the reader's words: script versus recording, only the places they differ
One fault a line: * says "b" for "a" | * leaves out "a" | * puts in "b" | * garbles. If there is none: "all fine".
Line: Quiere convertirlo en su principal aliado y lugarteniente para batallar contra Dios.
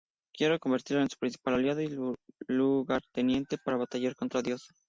all fine